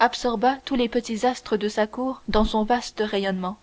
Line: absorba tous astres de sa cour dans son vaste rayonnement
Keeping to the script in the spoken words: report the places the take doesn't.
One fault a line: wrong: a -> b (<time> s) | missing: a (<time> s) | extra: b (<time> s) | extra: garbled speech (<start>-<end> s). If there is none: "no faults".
extra: les petits (0.8 s)